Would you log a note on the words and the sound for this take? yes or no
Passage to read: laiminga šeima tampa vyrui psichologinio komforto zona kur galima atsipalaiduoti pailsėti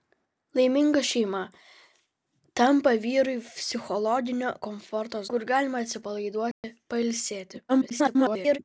yes